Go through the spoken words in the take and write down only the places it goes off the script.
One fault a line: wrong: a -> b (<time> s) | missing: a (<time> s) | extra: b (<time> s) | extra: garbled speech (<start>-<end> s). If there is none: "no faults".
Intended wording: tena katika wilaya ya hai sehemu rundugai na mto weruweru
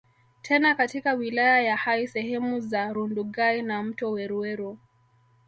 extra: za (2.6 s)